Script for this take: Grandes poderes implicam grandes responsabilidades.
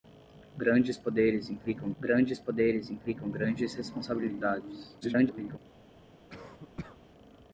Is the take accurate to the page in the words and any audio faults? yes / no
no